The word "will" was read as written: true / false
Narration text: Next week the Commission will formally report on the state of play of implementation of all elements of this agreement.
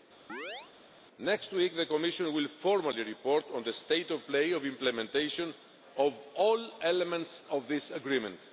true